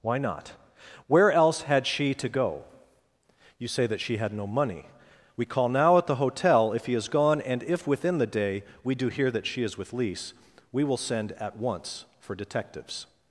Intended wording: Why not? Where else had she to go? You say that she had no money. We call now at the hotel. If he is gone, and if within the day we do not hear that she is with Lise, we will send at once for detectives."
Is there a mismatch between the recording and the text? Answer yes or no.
yes